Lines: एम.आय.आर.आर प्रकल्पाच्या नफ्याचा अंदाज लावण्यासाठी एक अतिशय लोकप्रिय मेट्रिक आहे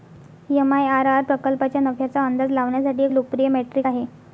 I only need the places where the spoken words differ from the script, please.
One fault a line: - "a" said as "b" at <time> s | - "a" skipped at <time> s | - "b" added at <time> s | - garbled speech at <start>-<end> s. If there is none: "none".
- "अतिशय" skipped at 3.1 s